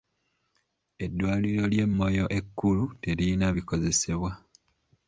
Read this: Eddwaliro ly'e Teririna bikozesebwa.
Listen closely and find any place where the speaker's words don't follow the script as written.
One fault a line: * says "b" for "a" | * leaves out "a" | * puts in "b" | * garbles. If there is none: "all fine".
* puts in "Moyo ekkulu"